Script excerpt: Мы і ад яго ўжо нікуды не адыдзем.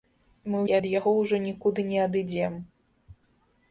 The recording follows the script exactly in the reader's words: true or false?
true